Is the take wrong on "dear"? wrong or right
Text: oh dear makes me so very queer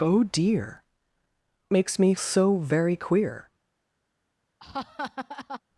right